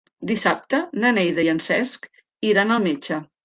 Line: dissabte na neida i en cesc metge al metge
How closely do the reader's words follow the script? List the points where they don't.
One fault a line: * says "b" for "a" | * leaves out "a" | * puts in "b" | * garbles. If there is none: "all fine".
* says "iran" for "metge"